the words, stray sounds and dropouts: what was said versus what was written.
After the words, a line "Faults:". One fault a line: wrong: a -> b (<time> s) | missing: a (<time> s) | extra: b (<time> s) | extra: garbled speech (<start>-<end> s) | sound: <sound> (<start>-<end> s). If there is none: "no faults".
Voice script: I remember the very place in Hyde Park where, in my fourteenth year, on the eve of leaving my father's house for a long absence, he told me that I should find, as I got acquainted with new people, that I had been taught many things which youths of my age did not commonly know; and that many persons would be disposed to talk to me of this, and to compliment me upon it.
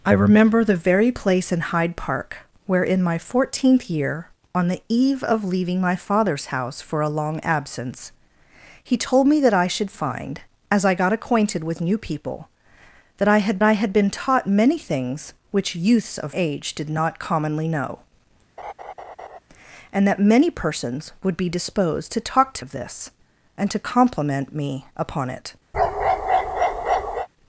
I remember the very place in Hyde Park where, in my fourteenth year, on the eve of leaving my father's house for a long absence, he told me that I should find, as I got acquainted with new people, that I had I had been taught many things which youths of age did not commonly know; and that many persons would be disposed to talk to of this, and to compliment me upon it.
Faults:
extra: I had (13.6 s)
missing: my (16.4 s)
sound: laugh (18.6-19.4 s)
missing: me (22.7 s)
sound: bark (25.7-27.3 s)